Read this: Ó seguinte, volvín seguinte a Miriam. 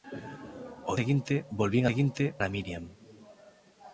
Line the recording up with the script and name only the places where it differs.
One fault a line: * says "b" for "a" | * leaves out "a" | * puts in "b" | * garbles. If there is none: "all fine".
all fine